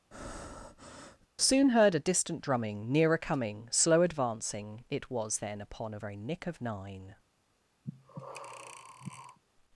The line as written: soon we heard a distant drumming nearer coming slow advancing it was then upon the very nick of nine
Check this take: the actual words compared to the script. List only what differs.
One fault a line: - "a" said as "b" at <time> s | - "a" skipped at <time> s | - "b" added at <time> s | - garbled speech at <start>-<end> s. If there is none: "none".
- "we" skipped at 1.7 s
- "the" said as "a" at 5.9 s